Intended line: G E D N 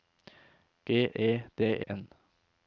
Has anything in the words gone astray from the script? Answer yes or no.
no